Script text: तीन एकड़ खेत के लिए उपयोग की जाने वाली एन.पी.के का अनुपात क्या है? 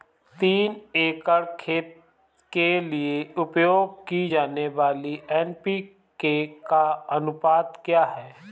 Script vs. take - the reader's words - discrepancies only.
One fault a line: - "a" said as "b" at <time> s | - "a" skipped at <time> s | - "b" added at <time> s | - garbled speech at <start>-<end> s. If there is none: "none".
none